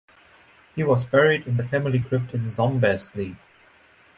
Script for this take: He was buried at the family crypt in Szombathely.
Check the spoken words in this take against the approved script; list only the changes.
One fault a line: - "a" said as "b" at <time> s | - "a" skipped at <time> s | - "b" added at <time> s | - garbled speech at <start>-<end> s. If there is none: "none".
- "at" said as "in" at 1.4 s